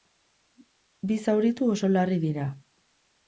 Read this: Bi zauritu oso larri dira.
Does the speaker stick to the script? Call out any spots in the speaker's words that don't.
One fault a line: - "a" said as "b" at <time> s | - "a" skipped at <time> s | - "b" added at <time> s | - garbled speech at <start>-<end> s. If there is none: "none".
none